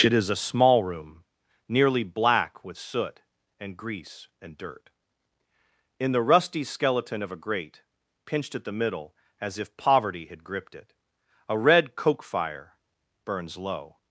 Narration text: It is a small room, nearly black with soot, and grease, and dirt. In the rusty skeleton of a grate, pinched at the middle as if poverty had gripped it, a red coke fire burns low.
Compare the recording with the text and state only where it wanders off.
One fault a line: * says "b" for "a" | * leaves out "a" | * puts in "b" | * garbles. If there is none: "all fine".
all fine